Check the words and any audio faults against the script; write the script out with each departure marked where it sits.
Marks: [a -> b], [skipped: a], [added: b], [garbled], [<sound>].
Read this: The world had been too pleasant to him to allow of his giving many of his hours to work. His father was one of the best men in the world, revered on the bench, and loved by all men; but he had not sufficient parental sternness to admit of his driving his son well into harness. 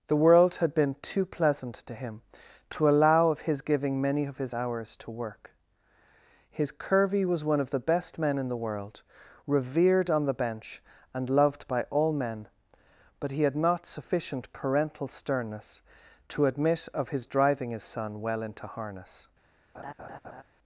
The world had been too pleasant to him to allow of his giving many of his hours to work. His [father -> curvy] was one of the best men in the world, revered on the bench, and loved by all men; but he had not sufficient parental sternness to admit of his driving his son well into harness. [laugh]